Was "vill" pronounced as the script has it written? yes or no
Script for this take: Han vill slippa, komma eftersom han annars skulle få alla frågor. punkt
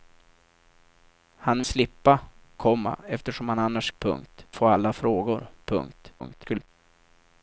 no